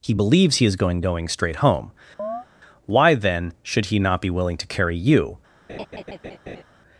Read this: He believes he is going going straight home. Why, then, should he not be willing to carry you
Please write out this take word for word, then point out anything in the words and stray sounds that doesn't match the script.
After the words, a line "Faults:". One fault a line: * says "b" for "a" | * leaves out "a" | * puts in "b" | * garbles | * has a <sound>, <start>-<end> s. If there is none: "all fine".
He believes he is going going straight home. Why, then, should he not be willing to carry you
Faults:
* has a chirp, 2.2-2.5 s
* has a laugh, 5.7-6.6 s